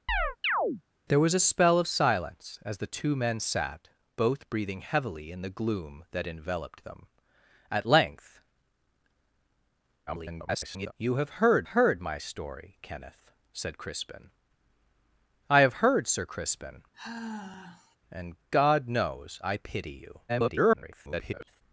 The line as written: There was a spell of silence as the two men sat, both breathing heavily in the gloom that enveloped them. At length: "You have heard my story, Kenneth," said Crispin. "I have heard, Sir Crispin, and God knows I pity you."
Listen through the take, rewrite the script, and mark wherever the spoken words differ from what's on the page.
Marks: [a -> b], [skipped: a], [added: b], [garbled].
There was a spell of silence as the two men sat, both breathing heavily in the gloom that enveloped them. At length: [garbled] "You have heard [added: heard] my story, Kenneth," said Crispin. "I have heard, Sir Crispin, and God knows I pity you." [garbled]